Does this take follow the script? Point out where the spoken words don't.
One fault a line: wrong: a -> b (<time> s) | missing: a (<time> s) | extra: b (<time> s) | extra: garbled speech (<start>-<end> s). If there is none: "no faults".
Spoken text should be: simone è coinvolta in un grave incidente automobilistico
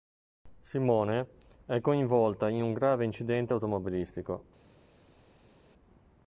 no faults